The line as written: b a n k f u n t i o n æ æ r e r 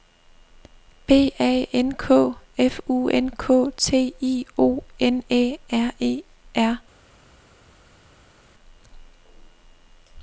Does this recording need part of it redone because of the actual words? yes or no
yes